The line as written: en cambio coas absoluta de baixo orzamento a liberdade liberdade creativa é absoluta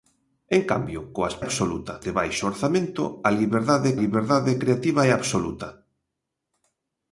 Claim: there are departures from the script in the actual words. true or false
false